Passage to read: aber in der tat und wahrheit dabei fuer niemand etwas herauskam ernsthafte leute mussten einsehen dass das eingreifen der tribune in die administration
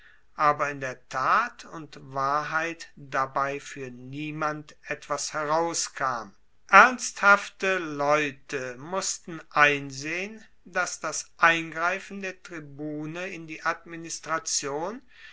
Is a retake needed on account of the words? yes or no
no